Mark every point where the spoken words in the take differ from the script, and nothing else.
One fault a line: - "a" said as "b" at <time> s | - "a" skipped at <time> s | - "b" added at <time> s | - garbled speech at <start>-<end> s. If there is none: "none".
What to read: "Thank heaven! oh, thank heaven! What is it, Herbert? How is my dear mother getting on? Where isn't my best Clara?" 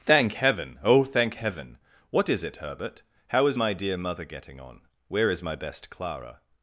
- "isn't" said as "is" at 5.3 s